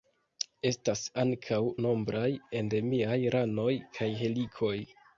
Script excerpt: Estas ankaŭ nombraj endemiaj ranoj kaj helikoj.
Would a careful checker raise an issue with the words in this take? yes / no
no